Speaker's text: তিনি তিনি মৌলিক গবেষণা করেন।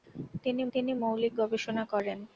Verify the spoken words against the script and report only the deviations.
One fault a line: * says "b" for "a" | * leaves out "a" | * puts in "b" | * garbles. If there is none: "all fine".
all fine